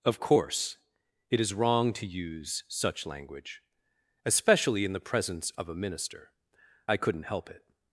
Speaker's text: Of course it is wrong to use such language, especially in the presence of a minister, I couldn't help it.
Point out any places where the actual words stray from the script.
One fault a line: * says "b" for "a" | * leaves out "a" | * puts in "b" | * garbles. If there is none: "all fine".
all fine